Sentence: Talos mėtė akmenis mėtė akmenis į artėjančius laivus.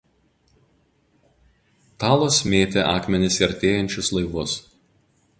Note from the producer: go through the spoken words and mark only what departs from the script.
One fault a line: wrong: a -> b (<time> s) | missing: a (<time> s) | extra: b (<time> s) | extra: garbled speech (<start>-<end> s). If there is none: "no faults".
missing: mėtė akmenis (3.4 s)